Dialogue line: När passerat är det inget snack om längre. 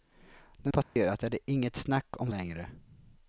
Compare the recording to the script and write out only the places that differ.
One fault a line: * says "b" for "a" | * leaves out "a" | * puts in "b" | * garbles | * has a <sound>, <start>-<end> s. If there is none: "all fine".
* has a dropout, 0.8-1.0 s